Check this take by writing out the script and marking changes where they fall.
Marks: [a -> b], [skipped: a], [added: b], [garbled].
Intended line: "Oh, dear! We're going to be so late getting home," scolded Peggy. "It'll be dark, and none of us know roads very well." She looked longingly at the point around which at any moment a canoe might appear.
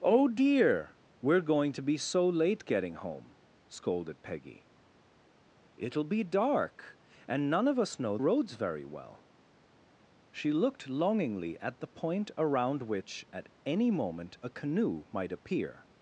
"Oh, dear! We're going to be so late getting home," scolded Peggy. "It'll be dark, and none of us know roads very well." She looked longingly at the point around which at any moment a canoe might appear.